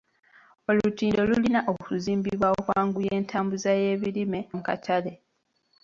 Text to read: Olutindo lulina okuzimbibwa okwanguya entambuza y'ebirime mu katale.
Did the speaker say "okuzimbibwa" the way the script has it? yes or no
yes